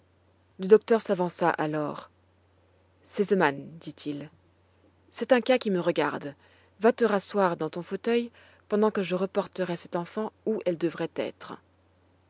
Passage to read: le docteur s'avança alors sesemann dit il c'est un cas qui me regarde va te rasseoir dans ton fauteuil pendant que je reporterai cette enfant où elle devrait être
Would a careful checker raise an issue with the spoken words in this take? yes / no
no